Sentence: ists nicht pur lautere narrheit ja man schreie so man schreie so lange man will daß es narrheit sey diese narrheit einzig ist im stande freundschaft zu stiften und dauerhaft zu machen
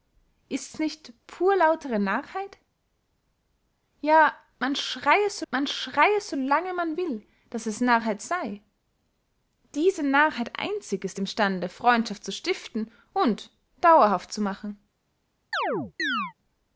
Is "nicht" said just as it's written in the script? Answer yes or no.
yes